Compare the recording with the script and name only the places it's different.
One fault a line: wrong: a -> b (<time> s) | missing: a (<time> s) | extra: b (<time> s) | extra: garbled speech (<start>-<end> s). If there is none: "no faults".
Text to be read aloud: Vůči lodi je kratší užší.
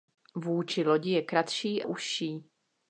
no faults